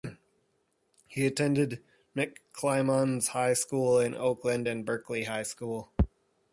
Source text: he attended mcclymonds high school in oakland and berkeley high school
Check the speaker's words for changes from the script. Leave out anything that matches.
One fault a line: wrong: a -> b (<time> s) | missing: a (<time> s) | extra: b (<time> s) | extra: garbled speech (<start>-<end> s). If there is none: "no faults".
no faults